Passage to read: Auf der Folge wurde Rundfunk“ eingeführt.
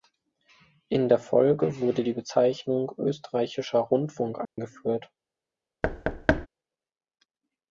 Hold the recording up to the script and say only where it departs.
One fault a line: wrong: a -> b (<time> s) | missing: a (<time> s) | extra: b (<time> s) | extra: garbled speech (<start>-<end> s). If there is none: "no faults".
wrong: Auf -> In (0.9 s)
extra: die Bezeichnung Österreichischer (2.0 s)